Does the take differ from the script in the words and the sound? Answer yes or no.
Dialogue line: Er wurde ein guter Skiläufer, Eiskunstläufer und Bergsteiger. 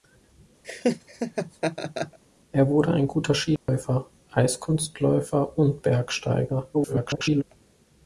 yes